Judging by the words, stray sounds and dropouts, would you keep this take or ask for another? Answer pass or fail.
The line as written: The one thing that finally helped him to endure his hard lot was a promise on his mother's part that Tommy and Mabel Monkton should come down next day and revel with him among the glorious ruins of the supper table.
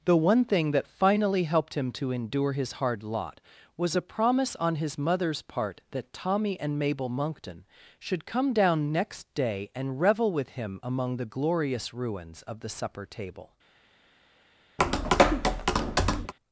fail